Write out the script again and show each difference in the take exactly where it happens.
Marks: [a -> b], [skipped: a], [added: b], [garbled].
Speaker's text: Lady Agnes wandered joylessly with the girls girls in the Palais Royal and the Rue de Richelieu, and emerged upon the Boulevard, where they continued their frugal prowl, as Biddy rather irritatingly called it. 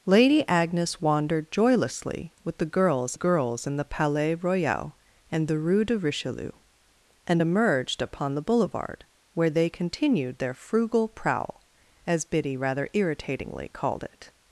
Lady Agnes wandered joylessly with the girls girls in the Palais Royal and the Rue de Richelieu, and emerged upon the Boulevard, where they continued their frugal prowl, as Biddy rather irritatingly called it.